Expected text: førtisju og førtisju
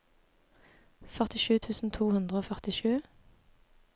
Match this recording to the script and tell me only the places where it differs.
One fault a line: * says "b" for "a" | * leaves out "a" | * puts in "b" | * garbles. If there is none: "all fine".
* puts in "tusen to hundre"